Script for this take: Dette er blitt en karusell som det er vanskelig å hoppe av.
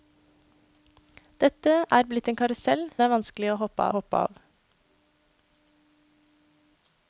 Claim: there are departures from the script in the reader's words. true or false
true